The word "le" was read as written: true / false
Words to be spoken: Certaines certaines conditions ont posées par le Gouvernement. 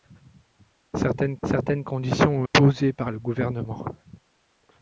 true